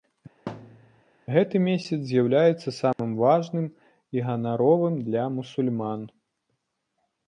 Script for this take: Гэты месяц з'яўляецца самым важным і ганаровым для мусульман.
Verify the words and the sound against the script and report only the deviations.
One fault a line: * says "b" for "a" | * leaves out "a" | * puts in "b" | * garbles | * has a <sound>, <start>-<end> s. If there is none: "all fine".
* has a thud, 0.5-1.0 s
* has a dropout, 2.9-3.0 s